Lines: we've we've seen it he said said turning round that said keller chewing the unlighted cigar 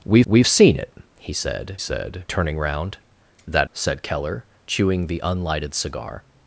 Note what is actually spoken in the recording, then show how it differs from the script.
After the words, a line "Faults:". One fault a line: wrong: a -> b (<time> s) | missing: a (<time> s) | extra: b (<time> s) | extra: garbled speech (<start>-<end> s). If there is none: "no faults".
we've we've seen it he said said turning round that said keller chewing the unlighted cigar
Faults:
no faults